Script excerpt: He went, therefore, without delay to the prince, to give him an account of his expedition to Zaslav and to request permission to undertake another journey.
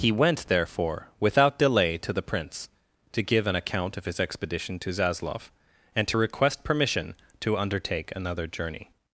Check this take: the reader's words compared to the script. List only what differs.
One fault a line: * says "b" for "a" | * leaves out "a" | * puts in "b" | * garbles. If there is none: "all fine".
* leaves out "him"